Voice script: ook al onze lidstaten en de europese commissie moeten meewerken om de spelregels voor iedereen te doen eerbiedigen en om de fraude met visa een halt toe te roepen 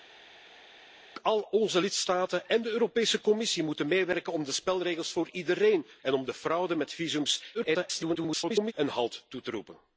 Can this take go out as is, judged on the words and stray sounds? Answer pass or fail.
fail